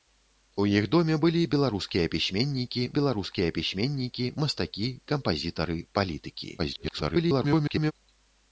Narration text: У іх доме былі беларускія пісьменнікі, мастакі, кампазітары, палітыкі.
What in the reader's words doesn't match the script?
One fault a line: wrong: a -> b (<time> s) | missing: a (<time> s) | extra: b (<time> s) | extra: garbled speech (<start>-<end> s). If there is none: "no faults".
extra: беларускія пісьменнікі (3.0 s)
extra: garbled speech (6.6-7.9 s)